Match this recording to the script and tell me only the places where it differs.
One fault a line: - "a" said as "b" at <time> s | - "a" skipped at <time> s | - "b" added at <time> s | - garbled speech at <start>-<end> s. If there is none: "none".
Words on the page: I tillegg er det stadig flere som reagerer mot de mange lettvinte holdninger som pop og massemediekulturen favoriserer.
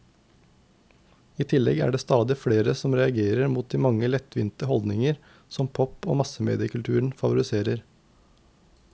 none